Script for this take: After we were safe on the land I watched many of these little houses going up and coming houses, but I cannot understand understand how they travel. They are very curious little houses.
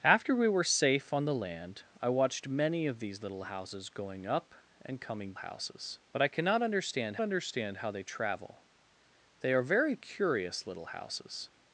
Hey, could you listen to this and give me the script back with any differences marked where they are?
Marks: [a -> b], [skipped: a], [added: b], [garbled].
After we were safe on the land I watched many of these little houses going up and coming houses, but I cannot understand understand how they travel. They are very curious little houses.